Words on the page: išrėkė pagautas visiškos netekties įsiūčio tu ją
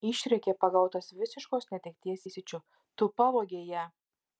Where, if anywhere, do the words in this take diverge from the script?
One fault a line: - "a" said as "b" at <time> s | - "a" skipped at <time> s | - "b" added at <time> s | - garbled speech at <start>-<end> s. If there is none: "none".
- "pavogei" added at 3.2 s